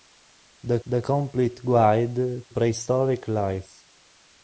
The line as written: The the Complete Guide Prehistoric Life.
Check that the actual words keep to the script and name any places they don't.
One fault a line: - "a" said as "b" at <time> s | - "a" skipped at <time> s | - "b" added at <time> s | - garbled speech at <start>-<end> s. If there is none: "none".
none